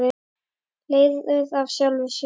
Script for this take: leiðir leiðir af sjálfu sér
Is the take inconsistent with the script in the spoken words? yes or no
yes